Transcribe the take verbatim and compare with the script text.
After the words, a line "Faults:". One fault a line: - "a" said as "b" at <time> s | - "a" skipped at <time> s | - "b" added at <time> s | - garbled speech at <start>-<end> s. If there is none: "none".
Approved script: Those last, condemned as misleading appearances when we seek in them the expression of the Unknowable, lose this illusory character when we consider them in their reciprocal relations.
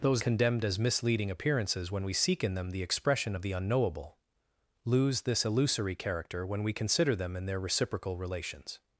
Those condemned as misleading appearances when we seek in them the expression of the Unknowable, lose this illusory character when we consider them in their reciprocal relations.
Faults:
- "last" skipped at 0.2 s